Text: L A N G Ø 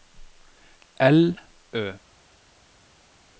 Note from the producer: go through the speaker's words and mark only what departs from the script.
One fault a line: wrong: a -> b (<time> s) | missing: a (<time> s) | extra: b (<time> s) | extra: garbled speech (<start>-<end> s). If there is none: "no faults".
missing: A N G (1.4 s)